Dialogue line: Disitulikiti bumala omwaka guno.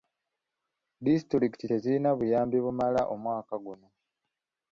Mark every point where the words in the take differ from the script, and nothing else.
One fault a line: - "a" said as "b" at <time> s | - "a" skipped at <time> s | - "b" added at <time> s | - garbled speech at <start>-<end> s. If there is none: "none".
- "tezirina buyambi" added at 1.7 s